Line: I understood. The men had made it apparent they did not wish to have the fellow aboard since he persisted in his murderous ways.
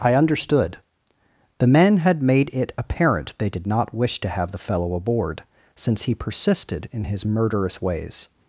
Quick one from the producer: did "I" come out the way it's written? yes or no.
yes